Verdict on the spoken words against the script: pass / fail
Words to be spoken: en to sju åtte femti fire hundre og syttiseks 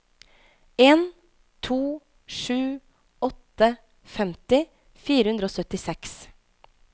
pass